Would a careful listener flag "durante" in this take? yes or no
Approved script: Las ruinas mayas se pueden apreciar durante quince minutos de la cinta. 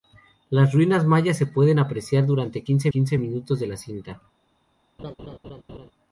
no